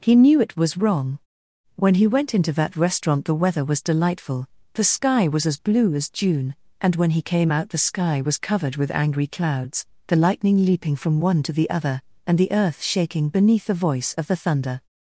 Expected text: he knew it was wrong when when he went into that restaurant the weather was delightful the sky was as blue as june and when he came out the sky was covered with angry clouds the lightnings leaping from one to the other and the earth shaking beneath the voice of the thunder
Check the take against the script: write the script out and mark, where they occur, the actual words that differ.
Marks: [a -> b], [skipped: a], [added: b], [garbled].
he knew it was wrong when [skipped: when] he went into that restaurant the weather was delightful the sky was as blue as june and when he came out the sky was covered with angry clouds the [lightnings -> lightning] leaping from one to the other and the earth shaking beneath the voice of the thunder